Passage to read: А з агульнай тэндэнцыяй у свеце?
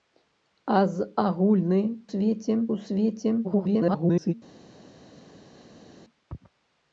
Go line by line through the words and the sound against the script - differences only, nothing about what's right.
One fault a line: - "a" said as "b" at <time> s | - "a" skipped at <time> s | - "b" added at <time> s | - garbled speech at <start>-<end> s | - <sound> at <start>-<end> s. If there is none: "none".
- "тэндэнцыяй" said as "свеце" at 2.1 s
- garbled speech at 3.4-4.3 s